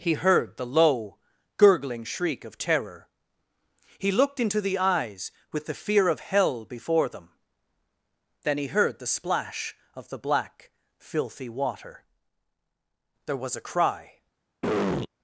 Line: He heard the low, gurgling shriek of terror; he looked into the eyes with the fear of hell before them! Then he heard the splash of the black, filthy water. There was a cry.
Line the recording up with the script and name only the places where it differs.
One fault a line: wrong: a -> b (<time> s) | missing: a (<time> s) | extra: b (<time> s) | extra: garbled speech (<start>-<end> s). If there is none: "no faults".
no faults